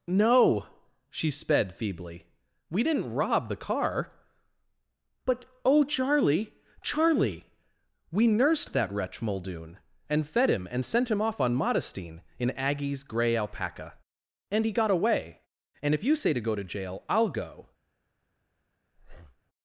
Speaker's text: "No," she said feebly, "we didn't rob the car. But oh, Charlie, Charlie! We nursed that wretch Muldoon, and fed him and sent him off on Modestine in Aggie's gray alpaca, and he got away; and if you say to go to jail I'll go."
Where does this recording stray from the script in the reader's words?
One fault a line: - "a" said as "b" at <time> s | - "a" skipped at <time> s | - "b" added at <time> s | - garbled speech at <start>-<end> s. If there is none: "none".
- "said" said as "sped" at 1.3 s